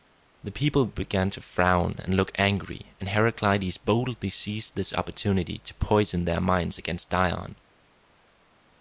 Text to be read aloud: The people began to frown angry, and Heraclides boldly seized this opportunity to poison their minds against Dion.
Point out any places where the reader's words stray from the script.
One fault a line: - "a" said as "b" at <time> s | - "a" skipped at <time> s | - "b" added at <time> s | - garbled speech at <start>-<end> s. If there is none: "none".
- "and look" added at 2.0 s